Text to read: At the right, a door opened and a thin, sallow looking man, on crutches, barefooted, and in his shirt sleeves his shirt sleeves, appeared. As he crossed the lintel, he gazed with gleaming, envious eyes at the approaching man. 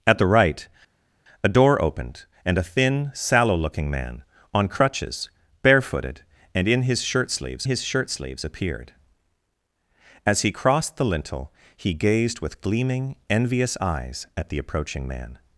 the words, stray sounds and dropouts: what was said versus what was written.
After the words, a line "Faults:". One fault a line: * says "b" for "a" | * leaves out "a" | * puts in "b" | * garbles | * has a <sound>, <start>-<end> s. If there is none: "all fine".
At the right, a door opened and a thin, sallow looking man, on crutches, barefooted, and in his shirt sleeves his shirt sleeves, appeared. As he crossed the lintel, he gazed with gleaming, envious eyes at the approaching man.
Faults:
all fine